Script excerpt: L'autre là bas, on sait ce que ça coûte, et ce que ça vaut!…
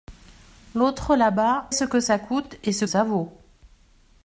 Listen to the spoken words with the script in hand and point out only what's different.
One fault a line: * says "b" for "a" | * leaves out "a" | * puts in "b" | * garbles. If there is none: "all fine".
* leaves out "on sait"
* leaves out "que"